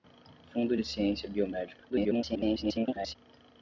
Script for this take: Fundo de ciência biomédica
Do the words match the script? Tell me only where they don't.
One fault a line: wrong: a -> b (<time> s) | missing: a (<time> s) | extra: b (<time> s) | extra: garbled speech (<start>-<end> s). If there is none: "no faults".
extra: garbled speech (1.9-3.2 s)